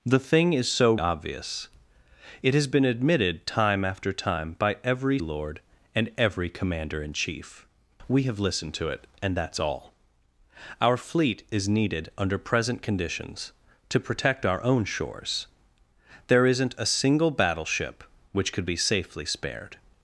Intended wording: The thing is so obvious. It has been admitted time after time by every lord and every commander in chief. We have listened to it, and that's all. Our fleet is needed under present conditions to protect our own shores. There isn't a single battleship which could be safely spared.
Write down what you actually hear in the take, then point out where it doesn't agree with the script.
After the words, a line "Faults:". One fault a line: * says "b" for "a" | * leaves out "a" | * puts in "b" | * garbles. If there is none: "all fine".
The thing is so obvious. It has been admitted time after time by every lord and every commander in chief. We have listened to it, and that's all. Our fleet is needed under present conditions to protect our own shores. There isn't a single battleship which could be safely spared.
Faults:
all fine